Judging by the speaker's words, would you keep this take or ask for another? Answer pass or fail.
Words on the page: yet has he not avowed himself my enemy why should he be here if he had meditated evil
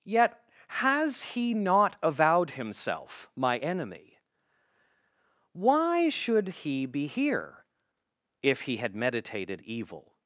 pass